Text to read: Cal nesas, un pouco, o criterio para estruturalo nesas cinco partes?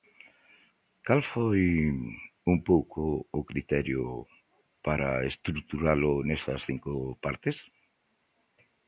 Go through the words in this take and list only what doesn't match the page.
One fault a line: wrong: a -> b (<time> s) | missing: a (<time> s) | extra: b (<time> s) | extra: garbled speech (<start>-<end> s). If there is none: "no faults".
wrong: nesas -> foi (1.3 s)